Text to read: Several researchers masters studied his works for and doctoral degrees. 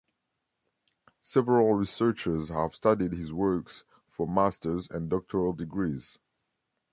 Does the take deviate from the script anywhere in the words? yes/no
yes